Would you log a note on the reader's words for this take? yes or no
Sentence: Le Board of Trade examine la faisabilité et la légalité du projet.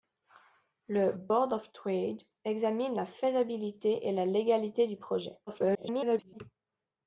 yes